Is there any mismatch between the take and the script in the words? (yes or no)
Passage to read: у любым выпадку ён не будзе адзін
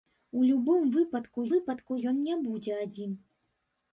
yes